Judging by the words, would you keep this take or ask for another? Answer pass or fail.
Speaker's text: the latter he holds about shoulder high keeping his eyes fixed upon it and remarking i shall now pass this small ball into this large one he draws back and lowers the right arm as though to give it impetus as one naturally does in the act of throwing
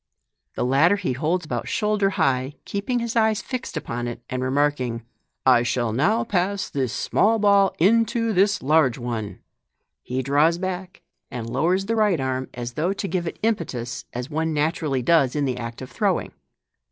pass